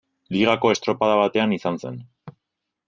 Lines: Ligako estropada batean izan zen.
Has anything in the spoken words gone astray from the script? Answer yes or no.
no